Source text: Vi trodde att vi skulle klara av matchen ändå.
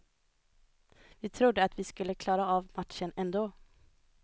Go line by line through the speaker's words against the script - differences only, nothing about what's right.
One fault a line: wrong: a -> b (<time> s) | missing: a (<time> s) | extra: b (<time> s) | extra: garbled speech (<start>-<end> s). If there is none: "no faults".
no faults